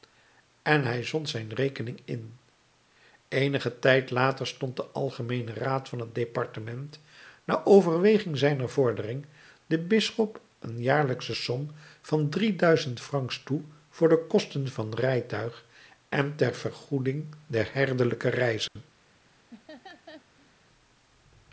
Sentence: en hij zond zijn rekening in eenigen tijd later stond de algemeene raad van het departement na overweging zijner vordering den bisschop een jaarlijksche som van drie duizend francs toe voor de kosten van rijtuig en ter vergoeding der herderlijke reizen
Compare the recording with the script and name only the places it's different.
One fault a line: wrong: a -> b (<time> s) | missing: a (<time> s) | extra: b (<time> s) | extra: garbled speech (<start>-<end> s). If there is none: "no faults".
no faults